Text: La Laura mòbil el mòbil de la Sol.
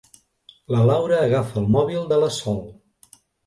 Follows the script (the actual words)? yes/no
no